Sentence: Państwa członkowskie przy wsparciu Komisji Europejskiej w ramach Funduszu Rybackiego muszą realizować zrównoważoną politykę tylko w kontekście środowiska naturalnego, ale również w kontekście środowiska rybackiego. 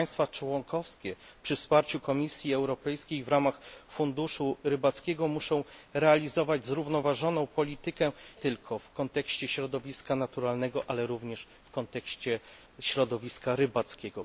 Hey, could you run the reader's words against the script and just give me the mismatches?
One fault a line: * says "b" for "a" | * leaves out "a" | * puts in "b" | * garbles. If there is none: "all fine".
all fine